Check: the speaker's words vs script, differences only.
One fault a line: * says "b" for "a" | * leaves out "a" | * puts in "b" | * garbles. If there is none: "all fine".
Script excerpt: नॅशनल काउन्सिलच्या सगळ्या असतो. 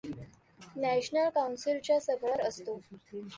all fine